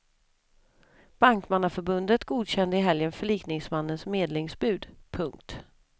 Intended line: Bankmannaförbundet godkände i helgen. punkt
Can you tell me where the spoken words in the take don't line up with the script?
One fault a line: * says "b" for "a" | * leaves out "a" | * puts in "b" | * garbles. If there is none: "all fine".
* puts in "förlikningsmannens medlingsbud"